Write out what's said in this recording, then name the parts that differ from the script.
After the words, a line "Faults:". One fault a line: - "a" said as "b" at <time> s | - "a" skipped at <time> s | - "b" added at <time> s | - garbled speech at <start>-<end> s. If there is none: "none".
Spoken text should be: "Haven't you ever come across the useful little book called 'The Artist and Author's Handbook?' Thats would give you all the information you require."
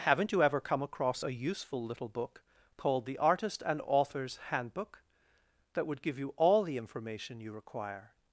"Haven't you ever come across a useful little book called 'The Artist and Author's Handbook?' That would give you all the information you require."
Faults:
- "the" said as "a" at 1.2 s
- "Thats" said as "That" at 5.7 s